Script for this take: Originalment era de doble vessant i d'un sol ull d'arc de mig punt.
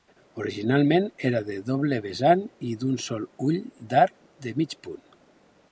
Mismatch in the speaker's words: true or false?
false